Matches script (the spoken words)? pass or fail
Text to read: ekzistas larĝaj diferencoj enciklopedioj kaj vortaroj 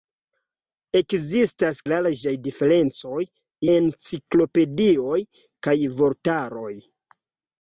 pass